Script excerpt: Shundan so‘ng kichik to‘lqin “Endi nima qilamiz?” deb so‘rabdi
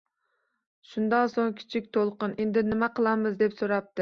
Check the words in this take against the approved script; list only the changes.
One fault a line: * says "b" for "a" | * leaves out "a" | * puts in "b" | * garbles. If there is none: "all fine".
all fine